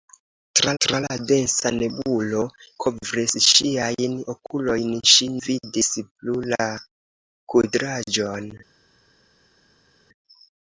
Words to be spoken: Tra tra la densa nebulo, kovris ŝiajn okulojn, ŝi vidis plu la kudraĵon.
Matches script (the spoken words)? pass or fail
pass